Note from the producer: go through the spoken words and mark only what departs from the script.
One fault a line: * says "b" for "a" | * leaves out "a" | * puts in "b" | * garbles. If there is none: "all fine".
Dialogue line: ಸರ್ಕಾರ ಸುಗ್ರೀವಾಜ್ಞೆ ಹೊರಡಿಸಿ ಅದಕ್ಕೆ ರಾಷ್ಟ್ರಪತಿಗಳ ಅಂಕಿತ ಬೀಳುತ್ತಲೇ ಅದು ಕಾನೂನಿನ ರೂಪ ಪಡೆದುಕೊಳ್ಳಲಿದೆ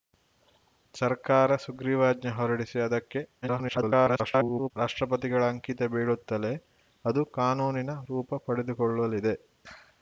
* garbles